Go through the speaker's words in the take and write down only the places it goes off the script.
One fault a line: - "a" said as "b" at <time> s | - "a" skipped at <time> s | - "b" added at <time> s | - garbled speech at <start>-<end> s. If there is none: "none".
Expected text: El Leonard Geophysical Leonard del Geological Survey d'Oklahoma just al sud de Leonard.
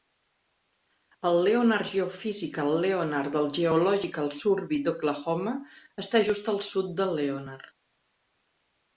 - "està" added at 6.0 s